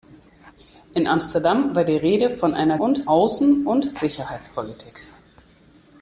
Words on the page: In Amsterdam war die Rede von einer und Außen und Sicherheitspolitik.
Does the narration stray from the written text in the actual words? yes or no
no